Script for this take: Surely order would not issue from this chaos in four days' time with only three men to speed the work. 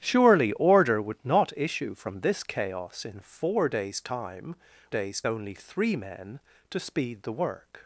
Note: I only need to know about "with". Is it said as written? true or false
false